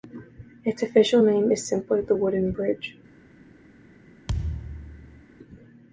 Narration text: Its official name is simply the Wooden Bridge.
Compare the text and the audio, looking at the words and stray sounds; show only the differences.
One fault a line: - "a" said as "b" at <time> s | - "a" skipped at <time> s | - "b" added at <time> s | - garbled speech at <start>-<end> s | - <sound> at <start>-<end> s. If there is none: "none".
- thud at 4.3-5.2 s